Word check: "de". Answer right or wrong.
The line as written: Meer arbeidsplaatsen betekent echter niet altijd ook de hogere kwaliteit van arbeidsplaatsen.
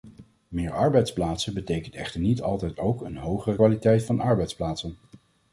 wrong